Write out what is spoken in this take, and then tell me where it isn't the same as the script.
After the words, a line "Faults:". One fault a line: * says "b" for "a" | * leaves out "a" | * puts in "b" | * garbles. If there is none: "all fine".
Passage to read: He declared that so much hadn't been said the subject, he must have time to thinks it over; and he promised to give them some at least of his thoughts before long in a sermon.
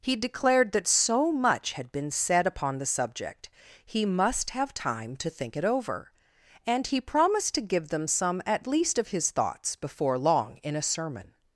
He declared that so much had been said upon the subject, he must have time to think it over; and he promised to give them some at least of his thoughts before long in a sermon.
Faults:
* says "had" for "hadn't"
* puts in "upon"
* says "think" for "thinks"